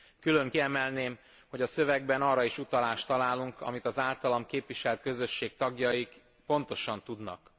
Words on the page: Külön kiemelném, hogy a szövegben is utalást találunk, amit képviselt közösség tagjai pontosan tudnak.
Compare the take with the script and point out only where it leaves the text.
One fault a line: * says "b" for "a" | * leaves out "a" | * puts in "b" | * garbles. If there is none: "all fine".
* puts in "arra"
* puts in "az általam"